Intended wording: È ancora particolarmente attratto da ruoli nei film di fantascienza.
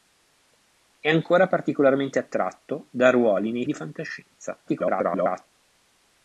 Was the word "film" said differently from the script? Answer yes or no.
yes